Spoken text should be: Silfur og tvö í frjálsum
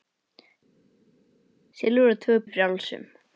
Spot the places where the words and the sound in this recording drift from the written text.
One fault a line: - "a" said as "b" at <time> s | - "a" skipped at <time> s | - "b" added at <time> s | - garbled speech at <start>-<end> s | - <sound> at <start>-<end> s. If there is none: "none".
none